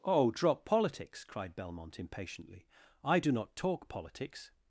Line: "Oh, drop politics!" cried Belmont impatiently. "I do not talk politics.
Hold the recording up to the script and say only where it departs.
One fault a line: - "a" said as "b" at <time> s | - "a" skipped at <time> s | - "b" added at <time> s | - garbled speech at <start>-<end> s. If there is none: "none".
none